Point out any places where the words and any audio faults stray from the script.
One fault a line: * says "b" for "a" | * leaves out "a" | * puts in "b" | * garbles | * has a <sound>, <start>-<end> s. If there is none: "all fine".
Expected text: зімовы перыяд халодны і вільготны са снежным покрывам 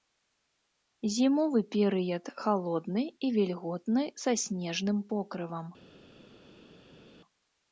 all fine